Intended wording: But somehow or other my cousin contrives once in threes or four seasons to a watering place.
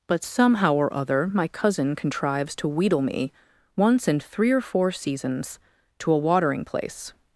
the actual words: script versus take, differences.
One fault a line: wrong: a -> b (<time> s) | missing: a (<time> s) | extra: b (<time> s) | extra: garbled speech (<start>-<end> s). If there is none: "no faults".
extra: to wheedle me (2.6 s)
wrong: threes -> three (4.2 s)